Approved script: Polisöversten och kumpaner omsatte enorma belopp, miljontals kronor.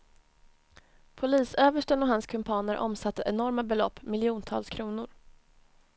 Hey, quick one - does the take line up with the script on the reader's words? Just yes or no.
no